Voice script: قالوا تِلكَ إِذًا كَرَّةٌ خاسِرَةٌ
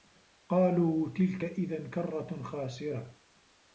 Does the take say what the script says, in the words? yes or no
yes